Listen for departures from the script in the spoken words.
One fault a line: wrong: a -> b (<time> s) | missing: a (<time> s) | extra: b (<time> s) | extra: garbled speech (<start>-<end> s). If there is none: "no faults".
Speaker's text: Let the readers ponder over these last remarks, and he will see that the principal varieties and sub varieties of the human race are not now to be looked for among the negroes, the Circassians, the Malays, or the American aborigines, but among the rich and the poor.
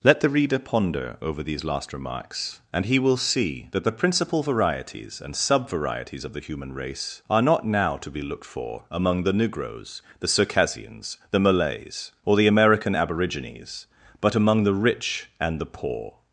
wrong: readers -> reader (0.3 s)